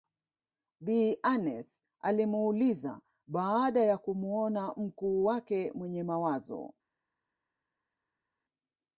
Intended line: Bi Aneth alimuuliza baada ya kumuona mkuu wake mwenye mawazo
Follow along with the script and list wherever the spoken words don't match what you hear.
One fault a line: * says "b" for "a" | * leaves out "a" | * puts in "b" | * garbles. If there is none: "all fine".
all fine